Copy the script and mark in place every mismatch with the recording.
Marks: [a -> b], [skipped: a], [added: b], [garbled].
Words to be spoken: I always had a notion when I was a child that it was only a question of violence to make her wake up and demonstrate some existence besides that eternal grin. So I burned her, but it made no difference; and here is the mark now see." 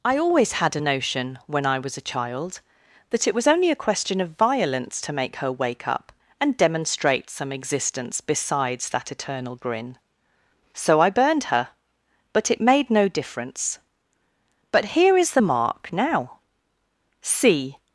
I always had a notion when I was a child that it was only a question of violence to make her wake up and demonstrate some existence besides that eternal grin. So I burned her, but it made no difference; [and -> but] here is the mark now see."